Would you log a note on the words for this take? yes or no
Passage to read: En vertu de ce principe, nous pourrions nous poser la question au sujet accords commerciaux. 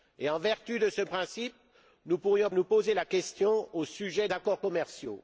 no